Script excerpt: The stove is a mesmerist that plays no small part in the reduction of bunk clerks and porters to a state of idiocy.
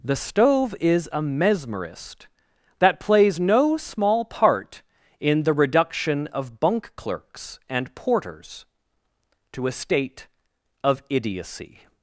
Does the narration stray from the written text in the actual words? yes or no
no